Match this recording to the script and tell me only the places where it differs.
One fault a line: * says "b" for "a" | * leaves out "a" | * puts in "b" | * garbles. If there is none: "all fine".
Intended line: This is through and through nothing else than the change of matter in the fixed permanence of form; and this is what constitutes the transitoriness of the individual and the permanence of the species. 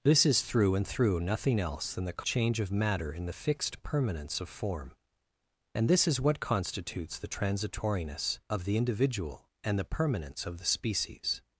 all fine